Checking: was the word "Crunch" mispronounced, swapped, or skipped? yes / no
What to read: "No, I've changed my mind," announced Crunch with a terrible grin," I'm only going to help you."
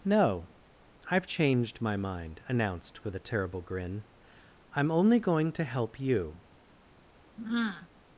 yes